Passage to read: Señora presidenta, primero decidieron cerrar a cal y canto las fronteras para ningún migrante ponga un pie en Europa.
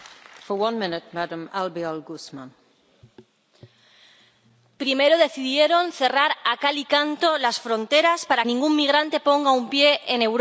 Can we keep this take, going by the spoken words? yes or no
yes